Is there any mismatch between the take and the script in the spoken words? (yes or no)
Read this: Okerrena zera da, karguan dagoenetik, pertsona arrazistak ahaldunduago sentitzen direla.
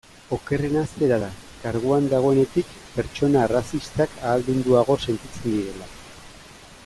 no